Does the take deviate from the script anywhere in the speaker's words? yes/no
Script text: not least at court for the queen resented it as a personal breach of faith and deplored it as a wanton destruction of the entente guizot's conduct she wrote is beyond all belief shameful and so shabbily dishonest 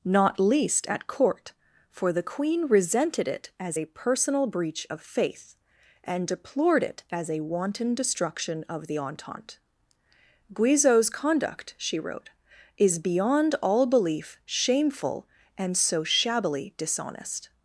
no